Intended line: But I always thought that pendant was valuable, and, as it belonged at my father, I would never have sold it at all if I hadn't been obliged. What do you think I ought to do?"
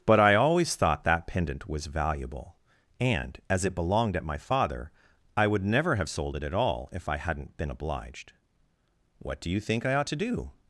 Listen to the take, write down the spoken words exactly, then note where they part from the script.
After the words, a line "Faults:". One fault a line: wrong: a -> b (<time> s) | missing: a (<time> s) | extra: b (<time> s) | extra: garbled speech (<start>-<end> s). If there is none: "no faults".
But I always thought that pendant was valuable, and, as it belonged at my father, I would never have sold it at all if I hadn't been obliged. What do you think I ought to do?"
Faults:
no faults